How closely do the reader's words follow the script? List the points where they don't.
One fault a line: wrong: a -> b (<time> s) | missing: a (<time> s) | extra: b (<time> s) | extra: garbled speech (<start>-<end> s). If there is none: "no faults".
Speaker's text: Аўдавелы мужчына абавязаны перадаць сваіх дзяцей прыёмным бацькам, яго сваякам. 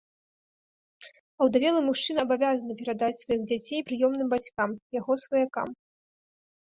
no faults